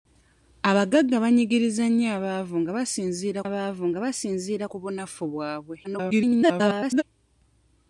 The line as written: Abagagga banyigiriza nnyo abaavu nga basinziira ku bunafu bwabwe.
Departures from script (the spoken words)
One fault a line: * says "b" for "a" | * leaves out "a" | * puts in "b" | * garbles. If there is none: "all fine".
* puts in "abaavu nga basinziira"
* garbles